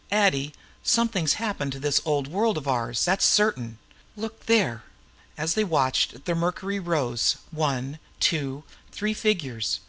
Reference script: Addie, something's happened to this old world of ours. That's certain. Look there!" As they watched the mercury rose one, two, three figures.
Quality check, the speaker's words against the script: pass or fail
pass